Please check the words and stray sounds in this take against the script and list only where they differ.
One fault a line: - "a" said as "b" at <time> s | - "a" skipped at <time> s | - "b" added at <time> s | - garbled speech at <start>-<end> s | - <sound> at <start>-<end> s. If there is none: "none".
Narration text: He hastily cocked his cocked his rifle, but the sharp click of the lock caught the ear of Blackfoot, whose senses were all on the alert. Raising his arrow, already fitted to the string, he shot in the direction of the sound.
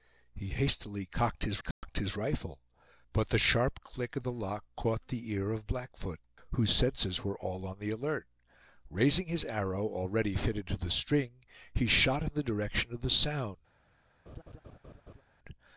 - dropout at 1.7-1.8 s
- laugh at 14.3-15.2 s